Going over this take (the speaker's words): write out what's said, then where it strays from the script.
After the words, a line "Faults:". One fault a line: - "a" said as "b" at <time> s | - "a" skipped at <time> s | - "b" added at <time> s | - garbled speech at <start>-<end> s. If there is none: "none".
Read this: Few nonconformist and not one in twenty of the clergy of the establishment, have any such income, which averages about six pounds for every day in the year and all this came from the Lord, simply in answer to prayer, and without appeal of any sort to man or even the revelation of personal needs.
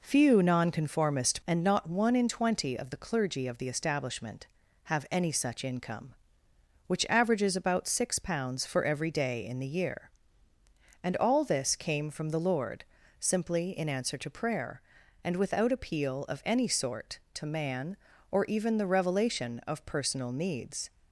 Few nonconformist and not one in twenty of the clergy of the establishment, have any such income, which averages about six pounds for every day in the year and all this came from the Lord, simply in answer to prayer, and without appeal of any sort to man or even the revelation of personal needs.
Faults:
none